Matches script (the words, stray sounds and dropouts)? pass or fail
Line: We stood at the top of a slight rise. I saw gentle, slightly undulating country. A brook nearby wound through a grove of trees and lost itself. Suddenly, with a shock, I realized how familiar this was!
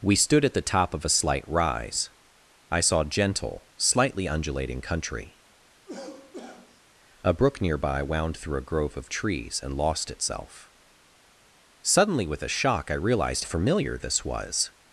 fail